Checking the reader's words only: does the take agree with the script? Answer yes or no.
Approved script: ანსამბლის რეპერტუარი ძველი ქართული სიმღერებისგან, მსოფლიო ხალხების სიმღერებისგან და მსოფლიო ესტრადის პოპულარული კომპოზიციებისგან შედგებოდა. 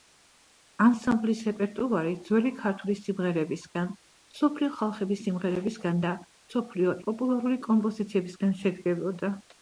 no